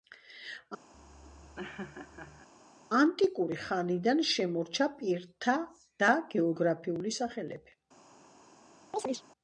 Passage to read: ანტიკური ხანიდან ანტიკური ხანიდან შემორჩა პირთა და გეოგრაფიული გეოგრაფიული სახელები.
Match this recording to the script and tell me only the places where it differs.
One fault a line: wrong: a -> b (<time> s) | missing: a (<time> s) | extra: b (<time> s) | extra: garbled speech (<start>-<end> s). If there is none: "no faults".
missing: ანტიკური ხანიდან (4.2 s)
missing: გეოგრაფიული (7.2 s)